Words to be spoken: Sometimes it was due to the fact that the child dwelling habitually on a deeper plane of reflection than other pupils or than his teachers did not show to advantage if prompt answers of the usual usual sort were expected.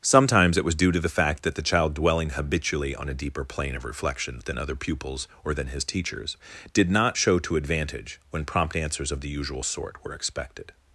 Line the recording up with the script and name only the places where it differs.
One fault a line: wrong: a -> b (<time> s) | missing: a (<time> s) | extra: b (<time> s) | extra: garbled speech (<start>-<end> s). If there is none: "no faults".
wrong: if -> when (8.3 s)
missing: usual (9.6 s)